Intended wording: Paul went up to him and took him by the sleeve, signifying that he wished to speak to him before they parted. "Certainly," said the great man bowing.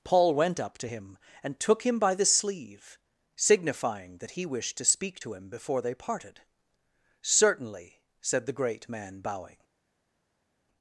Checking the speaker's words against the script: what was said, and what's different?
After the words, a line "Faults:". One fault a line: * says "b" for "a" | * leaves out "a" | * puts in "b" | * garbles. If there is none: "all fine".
Paul went up to him and took him by the sleeve, signifying that he wished to speak to him before they parted. "Certainly," said the great man bowing.
Faults:
all fine